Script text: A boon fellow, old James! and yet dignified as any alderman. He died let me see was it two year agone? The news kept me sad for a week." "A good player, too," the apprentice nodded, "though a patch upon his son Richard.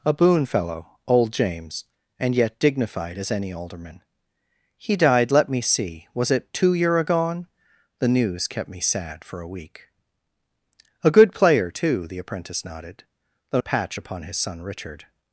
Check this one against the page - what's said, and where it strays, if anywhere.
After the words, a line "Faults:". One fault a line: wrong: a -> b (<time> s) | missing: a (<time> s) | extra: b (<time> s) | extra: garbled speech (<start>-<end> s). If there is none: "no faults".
A boon fellow, old James! and yet dignified as any alderman. He died let me see was it two year agone? The news kept me sad for a week." "A good player, too," the apprentice nodded, "though a patch upon his son Richard.
Faults:
no faults